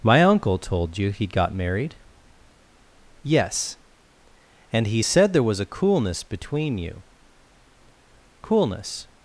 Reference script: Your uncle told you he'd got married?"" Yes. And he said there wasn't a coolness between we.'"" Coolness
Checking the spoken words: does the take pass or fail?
fail